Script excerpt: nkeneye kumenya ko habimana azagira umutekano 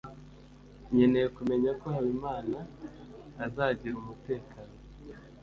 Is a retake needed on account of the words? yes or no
no